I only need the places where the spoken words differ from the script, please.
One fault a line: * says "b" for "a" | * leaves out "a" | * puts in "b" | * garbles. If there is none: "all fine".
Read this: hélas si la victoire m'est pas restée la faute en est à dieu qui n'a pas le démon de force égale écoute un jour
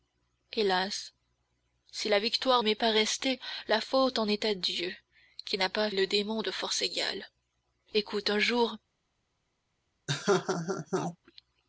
all fine